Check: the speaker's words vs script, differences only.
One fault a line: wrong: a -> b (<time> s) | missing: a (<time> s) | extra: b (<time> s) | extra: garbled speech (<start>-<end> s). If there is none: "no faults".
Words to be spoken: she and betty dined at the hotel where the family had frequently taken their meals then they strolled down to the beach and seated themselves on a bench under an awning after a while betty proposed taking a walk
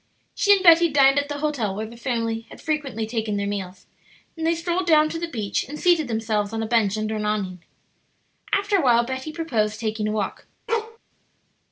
no faults